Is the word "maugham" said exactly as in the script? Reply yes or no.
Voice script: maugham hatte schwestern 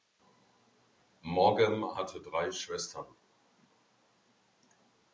yes